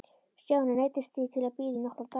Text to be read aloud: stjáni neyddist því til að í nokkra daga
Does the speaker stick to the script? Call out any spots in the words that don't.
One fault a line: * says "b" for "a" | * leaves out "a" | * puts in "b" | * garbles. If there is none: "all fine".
* puts in "bíða"